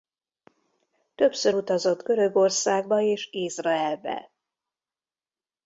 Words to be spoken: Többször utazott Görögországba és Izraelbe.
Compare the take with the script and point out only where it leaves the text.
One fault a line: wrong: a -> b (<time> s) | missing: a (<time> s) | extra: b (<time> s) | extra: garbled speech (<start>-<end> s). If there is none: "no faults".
no faults